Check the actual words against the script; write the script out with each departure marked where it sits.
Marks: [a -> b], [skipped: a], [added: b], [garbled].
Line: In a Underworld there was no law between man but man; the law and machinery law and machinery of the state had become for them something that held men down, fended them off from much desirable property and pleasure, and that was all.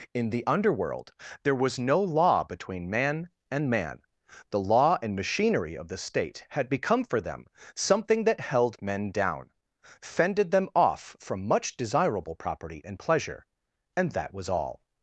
In [a -> the] Underworld there was no law between man [but -> and] man; the law and machinery [skipped: law and machinery] of the state had become for them something that held men down, fended them off from much desirable property and pleasure, and that was all.